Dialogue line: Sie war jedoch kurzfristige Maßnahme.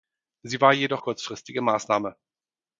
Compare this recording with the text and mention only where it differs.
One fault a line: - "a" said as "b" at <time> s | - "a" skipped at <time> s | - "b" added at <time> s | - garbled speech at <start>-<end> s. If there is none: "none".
none